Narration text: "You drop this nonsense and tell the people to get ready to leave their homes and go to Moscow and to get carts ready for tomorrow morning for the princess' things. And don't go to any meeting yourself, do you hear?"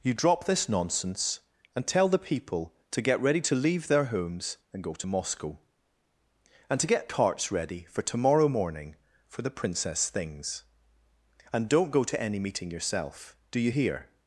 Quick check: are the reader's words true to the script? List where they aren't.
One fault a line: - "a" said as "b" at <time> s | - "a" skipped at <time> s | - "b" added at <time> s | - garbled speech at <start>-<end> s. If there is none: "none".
none